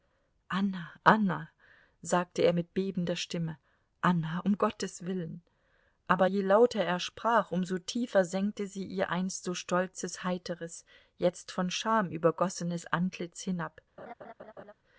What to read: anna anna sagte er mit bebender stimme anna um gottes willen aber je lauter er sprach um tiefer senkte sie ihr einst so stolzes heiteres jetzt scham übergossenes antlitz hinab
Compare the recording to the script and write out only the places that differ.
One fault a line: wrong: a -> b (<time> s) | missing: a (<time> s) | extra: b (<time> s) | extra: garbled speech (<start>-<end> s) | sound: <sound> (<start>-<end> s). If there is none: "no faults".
extra: so (7.6 s)
extra: von (11.5 s)
sound: laugh (14.0-14.7 s)